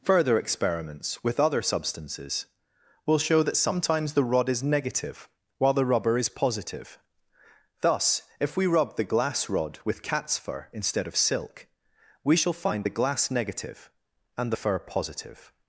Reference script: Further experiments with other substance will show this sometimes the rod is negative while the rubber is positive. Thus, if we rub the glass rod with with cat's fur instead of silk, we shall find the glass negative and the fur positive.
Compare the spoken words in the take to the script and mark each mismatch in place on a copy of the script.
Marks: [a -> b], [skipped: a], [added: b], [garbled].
Further experiments with other [substance -> substances] will show [this -> that] sometimes the rod is negative while the rubber is positive. Thus, if we rub the glass rod with [skipped: with] cat's fur instead of silk, we shall find the glass negative and the fur positive.